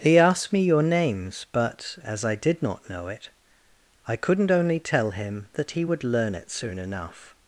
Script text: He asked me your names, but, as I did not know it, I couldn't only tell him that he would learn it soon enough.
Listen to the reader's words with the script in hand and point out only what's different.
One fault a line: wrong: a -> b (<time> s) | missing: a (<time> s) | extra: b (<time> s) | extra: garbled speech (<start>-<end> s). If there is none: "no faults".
no faults